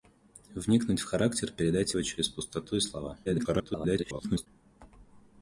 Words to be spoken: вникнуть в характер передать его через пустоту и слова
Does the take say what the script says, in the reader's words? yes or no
no